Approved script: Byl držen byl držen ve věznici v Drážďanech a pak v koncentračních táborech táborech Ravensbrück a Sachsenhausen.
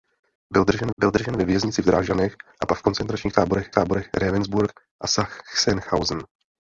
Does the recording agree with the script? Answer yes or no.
yes